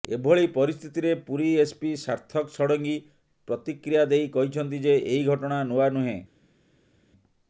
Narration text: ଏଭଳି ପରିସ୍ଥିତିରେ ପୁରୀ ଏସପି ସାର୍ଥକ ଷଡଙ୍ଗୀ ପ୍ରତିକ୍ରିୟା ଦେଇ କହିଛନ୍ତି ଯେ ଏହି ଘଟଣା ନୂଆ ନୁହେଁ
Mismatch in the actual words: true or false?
false